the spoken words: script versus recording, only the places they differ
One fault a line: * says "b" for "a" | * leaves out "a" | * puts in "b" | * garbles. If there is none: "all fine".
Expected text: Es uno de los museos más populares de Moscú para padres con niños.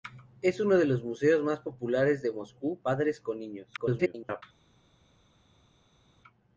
* leaves out "para"
* garbles